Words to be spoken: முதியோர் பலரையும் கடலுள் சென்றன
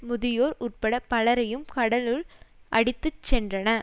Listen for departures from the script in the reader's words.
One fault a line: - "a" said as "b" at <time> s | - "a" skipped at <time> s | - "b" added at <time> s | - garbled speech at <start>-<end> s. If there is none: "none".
- "உட்பட" added at 0.6 s
- "அடித்து" added at 2.7 s